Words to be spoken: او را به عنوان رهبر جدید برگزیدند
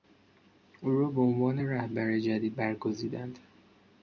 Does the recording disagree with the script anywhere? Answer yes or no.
no